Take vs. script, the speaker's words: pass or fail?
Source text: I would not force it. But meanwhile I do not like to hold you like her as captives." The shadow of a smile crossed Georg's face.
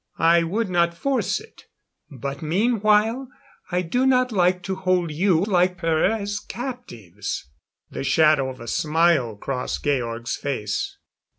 pass